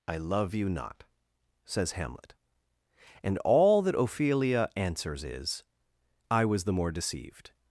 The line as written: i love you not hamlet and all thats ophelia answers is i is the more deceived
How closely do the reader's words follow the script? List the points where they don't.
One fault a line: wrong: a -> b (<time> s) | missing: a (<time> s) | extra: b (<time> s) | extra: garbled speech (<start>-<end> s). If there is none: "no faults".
extra: says (1.6 s)
wrong: thats -> that (3.8 s)
wrong: is -> was (6.5 s)